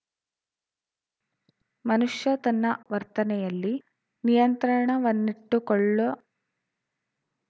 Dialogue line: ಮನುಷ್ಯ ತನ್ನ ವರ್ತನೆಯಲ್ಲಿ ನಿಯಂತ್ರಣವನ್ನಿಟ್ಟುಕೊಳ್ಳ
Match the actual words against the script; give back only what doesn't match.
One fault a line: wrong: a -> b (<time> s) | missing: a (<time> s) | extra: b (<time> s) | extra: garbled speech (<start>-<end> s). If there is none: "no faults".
no faults